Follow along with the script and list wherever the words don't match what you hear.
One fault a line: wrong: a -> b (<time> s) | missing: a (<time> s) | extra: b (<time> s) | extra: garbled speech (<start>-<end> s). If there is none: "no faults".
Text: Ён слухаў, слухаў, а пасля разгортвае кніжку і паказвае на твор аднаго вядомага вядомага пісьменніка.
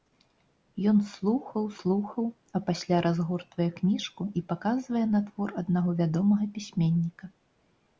missing: вядомага (6.4 s)